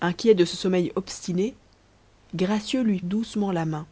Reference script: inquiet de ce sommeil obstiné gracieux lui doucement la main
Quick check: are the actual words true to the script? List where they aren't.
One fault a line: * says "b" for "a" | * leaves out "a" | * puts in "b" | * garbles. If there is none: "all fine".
all fine